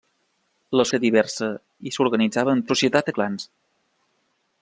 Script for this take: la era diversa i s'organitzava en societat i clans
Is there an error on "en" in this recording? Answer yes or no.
no